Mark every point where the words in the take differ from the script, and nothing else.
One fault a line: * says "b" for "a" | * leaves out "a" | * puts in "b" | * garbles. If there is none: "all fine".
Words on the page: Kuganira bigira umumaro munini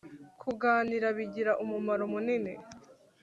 all fine